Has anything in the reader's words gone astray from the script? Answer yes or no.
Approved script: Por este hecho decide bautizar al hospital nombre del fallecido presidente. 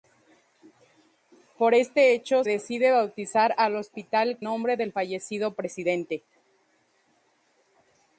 no